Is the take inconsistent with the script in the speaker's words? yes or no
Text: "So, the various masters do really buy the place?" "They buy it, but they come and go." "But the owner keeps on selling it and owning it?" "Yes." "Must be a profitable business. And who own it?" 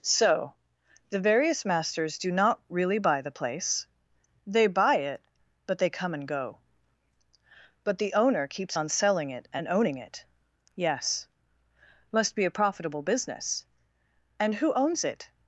yes